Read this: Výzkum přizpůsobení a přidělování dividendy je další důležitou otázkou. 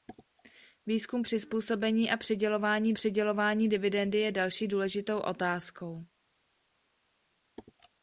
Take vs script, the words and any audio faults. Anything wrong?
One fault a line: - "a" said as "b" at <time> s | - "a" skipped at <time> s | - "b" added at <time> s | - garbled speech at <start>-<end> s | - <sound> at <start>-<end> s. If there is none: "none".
- "přidělování" added at 2.9 s